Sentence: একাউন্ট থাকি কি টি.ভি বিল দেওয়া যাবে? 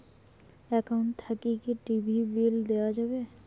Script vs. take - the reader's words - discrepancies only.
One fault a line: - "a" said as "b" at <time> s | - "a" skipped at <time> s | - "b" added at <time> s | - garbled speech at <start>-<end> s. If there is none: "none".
none